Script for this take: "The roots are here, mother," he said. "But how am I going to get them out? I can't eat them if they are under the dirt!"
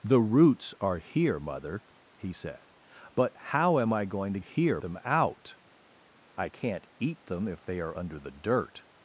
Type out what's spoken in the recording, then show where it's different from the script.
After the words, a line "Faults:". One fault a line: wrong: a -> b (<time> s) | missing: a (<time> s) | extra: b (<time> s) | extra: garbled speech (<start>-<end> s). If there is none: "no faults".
"The roots are here, mother," he said. "But how am I going to here them out? I can't eat them if they are under the dirt!"
Faults:
wrong: get -> here (4.4 s)